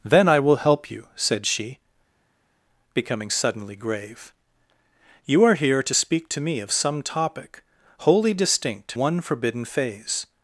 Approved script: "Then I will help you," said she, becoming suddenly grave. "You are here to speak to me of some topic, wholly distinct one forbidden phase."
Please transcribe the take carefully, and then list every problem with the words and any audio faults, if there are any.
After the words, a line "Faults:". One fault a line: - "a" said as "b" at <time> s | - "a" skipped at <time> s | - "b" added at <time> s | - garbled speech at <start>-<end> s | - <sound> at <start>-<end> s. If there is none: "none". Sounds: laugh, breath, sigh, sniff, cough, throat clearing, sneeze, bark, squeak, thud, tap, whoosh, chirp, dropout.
"Then I will help you," said she, becoming suddenly grave. "You are here to speak to me of some topic, wholly distinct one forbidden phase."
Faults:
none